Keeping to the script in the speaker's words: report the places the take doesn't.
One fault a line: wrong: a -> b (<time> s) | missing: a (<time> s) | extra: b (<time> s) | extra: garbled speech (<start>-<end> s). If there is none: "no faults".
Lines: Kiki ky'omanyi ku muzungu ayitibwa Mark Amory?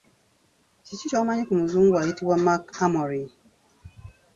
no faults